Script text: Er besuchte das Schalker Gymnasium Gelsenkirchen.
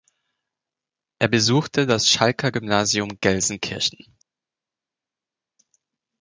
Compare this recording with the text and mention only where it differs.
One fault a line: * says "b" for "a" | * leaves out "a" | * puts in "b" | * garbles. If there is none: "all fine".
all fine